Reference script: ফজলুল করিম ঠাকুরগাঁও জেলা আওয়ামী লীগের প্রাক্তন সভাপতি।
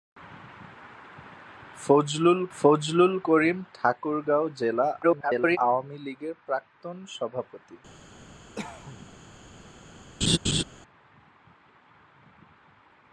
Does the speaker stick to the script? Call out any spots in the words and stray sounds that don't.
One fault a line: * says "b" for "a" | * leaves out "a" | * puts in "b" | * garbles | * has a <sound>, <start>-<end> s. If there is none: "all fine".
* puts in "ফজলুল"
* garbles
* has a cough, 8.6-9.1 s
* has a laugh, 10.2-10.6 s